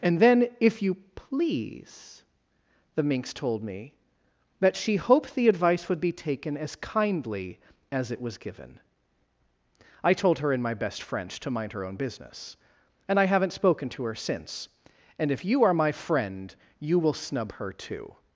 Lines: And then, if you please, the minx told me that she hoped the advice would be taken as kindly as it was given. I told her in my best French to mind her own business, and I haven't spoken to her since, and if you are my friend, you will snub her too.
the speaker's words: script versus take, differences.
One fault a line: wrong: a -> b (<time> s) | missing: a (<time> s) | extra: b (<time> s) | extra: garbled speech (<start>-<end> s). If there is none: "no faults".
no faults